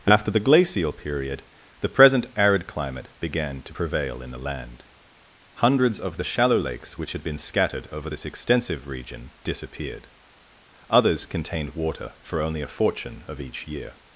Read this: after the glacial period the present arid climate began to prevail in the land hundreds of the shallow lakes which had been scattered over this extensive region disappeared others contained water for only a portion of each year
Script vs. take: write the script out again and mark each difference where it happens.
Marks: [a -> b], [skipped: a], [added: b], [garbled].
after the glacial period the present arid climate began to prevail in the land hundreds of the shallow lakes which had been scattered over this extensive region disappeared others contained water for only a [portion -> fortune] of each year